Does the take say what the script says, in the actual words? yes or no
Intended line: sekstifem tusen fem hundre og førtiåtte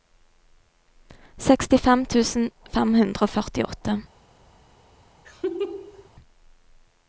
yes